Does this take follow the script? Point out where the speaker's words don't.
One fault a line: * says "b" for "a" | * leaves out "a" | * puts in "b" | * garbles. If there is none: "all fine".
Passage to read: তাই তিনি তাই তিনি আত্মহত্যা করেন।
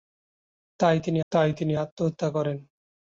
all fine